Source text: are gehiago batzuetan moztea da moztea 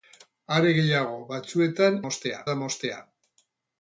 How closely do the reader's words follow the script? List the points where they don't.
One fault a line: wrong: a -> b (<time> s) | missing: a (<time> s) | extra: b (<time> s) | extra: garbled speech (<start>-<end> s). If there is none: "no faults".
no faults